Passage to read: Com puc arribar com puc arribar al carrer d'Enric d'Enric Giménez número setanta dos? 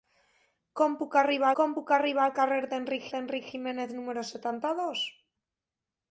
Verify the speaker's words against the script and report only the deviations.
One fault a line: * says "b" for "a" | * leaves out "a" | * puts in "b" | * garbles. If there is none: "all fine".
all fine